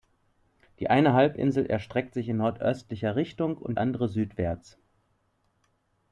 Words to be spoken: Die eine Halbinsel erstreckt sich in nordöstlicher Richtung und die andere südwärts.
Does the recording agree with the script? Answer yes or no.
no